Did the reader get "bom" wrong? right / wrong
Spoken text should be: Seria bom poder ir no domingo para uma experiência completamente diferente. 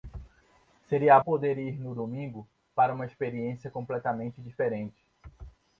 wrong